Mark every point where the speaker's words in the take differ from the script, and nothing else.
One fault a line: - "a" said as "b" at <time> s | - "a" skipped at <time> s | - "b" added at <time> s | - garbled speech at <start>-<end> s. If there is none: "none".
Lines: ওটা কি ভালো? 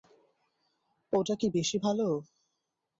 - "বেশি" added at 1.5 s